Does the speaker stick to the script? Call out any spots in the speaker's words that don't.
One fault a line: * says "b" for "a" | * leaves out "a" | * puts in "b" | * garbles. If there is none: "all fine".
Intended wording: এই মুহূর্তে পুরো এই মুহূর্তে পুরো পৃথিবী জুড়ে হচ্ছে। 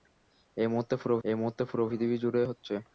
all fine